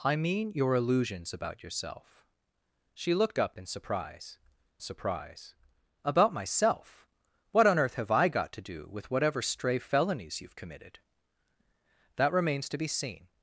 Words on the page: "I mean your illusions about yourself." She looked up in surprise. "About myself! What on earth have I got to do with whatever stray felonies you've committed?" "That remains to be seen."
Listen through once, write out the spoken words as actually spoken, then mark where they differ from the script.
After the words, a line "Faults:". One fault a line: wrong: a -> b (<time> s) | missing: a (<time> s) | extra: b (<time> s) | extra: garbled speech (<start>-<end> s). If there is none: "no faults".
"I mean your illusions about yourself." She looked up in surprise surprise. "About myself! What on earth have I got to do with whatever stray felonies you've committed?" "That remains to be seen."
Faults:
extra: surprise (4.8 s)